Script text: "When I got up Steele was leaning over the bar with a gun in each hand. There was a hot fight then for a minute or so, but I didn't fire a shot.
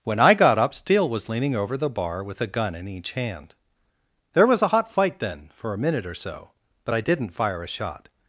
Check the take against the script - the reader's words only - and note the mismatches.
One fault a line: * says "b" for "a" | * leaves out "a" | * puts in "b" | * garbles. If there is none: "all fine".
all fine